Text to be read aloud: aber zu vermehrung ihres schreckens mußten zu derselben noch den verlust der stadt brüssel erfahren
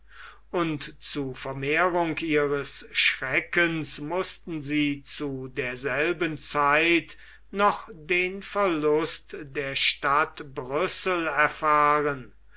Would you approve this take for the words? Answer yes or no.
no